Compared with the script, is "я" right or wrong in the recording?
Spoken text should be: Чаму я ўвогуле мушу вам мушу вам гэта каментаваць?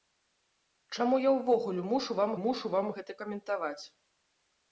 right